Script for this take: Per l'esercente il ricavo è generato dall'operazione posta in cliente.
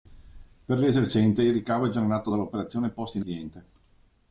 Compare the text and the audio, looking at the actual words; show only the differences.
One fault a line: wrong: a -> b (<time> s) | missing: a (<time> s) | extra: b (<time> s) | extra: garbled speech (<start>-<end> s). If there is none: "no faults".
no faults